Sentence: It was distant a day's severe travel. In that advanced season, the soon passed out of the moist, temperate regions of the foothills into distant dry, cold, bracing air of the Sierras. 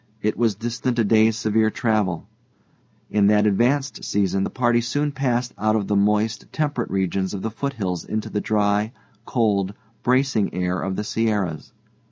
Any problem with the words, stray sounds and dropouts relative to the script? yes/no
yes